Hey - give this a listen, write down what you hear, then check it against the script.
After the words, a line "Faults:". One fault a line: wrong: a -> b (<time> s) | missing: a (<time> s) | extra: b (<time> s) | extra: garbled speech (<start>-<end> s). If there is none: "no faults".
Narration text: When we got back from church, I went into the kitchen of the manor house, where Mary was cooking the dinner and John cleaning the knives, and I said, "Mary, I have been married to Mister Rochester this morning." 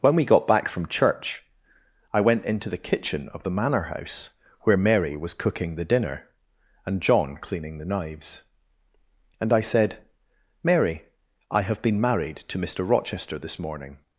When we got back from church, I went into the kitchen of the manor house, where Mary was cooking the dinner and John cleaning the knives, and I said, "Mary, I have been married to Mister Rochester this morning."
Faults:
no faults